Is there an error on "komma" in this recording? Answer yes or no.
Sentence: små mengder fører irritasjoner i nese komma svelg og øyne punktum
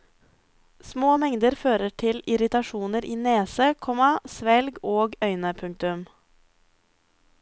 no